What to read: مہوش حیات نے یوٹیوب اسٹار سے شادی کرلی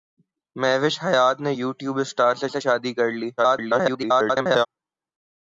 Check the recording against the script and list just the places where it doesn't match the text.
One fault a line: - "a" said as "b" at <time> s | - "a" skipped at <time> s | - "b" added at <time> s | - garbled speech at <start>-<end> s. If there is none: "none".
- "سے" added at 2.5 s
- garbled speech at 3.4-4.7 s